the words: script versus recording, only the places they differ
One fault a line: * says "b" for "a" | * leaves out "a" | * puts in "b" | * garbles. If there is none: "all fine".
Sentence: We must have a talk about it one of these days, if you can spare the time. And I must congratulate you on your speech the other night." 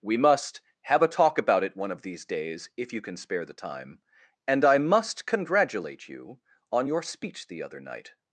all fine